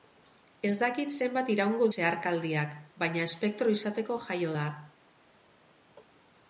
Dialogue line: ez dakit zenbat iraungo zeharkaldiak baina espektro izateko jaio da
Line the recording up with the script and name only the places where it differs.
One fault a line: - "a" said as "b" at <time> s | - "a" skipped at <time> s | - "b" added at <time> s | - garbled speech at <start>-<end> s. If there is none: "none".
none